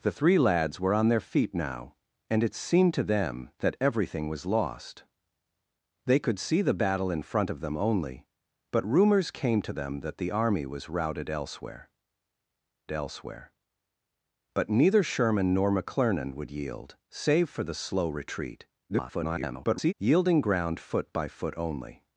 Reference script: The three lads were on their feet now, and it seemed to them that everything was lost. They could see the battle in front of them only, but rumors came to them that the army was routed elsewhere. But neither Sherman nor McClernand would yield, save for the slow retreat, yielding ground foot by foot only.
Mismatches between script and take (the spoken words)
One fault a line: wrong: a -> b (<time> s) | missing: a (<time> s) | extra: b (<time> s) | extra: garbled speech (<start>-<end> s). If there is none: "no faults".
extra: elsewhere (12.9 s)
extra: garbled speech (18.9-19.9 s)